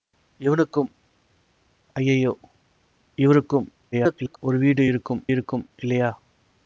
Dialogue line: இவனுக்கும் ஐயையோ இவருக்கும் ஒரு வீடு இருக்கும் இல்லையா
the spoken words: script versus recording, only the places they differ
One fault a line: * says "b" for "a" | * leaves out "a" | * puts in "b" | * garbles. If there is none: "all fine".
* garbles
* puts in "இருக்கும்"